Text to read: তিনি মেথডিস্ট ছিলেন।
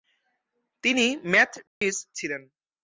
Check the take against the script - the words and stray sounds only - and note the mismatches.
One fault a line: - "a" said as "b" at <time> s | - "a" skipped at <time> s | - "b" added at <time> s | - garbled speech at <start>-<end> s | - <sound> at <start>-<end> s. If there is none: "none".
- dropout at 1.7-1.8 s